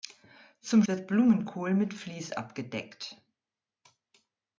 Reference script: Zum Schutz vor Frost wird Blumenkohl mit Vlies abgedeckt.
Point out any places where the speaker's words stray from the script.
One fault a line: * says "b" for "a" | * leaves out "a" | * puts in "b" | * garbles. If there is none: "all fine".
* leaves out "Schutz vor Frost"